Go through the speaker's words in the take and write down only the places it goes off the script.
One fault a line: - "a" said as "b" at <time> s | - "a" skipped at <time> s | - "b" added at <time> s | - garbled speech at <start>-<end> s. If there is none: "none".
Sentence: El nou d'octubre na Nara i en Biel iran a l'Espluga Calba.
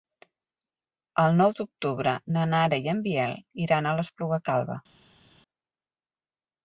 none